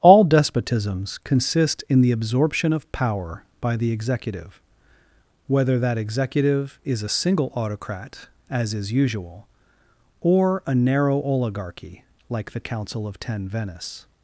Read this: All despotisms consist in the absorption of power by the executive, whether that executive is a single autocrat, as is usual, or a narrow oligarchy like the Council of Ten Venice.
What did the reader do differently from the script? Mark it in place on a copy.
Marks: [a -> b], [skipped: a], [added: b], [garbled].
All despotisms consist in the absorption of power by the executive, whether that executive is a single autocrat, as is usual, or a narrow oligarchy like the Council of Ten Venice.